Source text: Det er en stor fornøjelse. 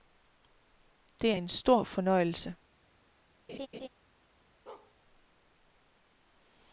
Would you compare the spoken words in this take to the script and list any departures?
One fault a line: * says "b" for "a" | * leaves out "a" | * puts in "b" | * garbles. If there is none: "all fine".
all fine